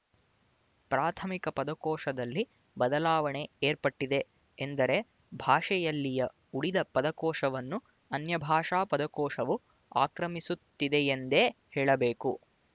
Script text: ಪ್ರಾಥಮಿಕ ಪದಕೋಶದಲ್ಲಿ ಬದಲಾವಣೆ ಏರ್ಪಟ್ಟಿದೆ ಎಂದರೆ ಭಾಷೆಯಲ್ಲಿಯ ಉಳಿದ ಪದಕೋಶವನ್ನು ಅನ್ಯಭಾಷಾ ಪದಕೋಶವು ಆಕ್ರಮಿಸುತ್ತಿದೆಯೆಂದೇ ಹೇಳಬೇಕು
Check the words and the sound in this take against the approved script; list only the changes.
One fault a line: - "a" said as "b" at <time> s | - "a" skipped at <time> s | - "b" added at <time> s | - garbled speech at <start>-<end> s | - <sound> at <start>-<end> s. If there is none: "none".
none